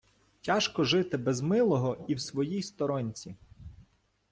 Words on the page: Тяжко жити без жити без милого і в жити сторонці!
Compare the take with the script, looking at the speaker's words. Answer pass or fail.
fail